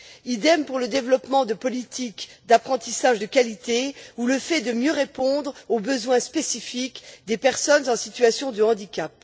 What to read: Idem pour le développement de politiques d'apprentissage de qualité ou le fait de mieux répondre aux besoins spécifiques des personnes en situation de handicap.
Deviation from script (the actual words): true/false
false